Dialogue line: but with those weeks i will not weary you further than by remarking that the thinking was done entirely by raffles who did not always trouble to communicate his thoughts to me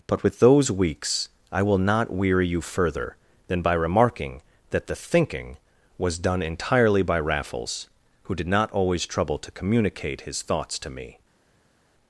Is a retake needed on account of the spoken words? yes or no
no